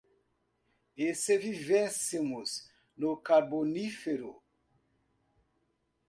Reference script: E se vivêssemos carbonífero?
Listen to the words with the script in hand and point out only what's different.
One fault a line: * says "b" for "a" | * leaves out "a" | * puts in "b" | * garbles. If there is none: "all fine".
* puts in "no"